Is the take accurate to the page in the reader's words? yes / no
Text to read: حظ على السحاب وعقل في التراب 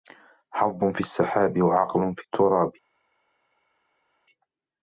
no